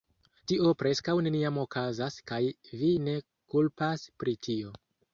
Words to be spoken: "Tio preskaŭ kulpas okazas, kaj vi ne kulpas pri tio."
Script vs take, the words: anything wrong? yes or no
yes